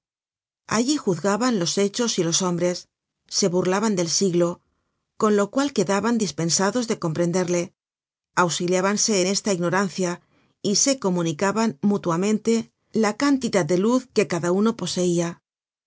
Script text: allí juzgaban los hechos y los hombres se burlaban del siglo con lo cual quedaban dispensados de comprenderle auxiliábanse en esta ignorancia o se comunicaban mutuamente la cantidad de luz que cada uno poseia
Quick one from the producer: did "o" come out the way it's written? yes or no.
no